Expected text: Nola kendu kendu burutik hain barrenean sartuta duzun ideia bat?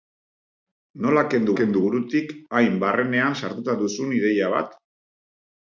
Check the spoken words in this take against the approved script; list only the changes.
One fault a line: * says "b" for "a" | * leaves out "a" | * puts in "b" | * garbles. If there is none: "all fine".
all fine